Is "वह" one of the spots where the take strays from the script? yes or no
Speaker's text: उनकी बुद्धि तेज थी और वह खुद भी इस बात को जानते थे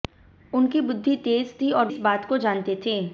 yes